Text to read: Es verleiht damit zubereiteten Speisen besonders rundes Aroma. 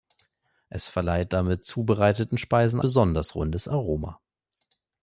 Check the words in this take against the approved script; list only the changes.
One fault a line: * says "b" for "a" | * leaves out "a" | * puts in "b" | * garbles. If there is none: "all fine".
all fine